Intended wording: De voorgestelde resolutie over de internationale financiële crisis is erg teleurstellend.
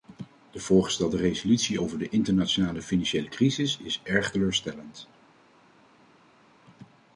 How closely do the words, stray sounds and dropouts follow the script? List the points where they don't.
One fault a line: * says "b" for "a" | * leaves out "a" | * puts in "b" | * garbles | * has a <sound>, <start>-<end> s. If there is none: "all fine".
all fine